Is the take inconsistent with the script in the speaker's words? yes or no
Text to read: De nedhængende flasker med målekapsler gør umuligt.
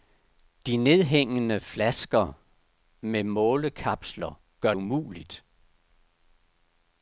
no